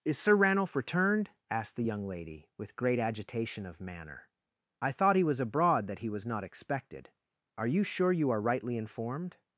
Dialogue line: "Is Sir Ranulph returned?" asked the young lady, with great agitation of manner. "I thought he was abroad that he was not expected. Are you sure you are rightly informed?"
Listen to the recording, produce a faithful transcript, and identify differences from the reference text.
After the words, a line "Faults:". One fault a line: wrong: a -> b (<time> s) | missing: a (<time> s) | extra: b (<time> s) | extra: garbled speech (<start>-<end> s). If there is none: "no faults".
"Is Sir Ranulph returned?" asked the young lady, with great agitation of manner. "I thought he was abroad that he was not expected. Are you sure you are rightly informed?"
Faults:
no faults